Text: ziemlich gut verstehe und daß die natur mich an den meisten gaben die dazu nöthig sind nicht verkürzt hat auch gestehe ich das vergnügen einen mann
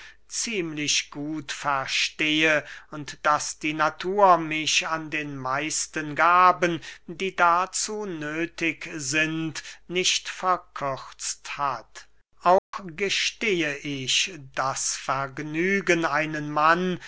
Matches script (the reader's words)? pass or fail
pass